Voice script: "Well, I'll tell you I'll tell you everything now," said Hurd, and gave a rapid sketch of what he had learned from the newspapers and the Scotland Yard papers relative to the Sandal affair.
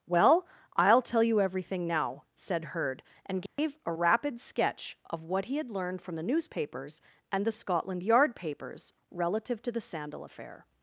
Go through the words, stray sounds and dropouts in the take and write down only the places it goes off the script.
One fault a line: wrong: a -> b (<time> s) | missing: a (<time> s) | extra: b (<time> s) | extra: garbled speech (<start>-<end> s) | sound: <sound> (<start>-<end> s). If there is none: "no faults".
missing: I'll tell you (1.4 s)
sound: dropout (3.5-3.6 s)